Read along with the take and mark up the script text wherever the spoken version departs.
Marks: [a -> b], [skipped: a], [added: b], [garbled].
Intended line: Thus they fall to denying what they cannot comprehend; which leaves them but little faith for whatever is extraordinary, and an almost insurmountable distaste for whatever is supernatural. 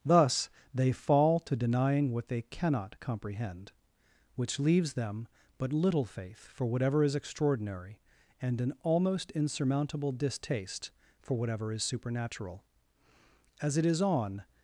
Thus they fall to denying what they cannot comprehend; which leaves them but little faith for whatever is extraordinary, and an almost insurmountable distaste for whatever is supernatural. [added: As it is on]